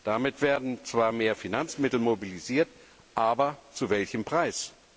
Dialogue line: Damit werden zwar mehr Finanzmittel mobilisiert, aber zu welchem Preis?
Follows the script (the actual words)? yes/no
yes